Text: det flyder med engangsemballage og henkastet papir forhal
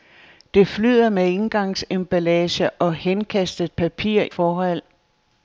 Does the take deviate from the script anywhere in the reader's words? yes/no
no